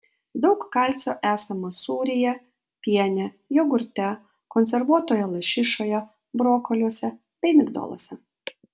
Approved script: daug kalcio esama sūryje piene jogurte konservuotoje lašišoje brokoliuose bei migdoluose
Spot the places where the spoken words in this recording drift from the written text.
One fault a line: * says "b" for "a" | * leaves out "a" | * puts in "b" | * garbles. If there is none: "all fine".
all fine